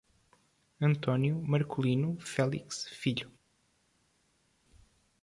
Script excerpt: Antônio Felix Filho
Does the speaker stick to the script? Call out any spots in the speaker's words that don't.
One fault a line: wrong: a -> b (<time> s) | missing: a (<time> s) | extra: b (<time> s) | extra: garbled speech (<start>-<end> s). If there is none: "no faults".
extra: Marculino (1.4 s)